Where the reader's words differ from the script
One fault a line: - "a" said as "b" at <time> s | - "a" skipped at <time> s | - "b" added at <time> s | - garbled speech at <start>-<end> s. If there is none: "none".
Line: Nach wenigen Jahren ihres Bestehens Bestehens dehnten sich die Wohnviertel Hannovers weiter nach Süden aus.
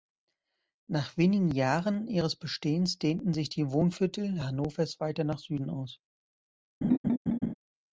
- "Bestehens" skipped at 3.0 s